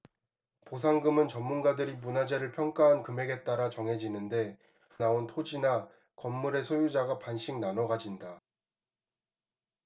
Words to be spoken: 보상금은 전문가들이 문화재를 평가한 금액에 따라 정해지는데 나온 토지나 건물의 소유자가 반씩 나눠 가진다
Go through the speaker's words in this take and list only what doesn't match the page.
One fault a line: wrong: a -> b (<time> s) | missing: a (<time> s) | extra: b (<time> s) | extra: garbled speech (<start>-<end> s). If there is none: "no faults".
no faults